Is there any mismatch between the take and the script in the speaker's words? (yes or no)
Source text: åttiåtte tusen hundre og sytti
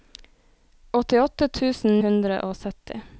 no